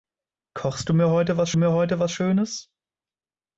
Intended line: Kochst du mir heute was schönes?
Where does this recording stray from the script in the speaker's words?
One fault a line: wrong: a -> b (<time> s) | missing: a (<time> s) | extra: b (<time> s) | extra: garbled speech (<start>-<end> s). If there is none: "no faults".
extra: mir heute was (1.6 s)